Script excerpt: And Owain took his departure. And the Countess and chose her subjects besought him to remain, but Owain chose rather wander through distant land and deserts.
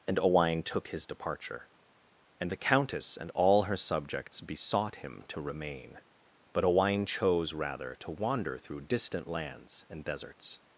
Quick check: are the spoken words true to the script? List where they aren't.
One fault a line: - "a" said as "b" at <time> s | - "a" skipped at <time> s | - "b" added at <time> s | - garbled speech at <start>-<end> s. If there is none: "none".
- "chose" said as "all" at 3.3 s
- "to" added at 8.0 s
- "land" said as "lands" at 9.3 s